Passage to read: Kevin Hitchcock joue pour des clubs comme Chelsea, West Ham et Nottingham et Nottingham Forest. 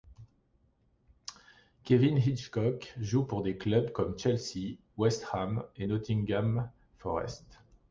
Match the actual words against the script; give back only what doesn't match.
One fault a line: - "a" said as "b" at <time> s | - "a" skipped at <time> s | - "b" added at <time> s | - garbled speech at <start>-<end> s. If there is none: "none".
- "et Nottingham" skipped at 6.7 s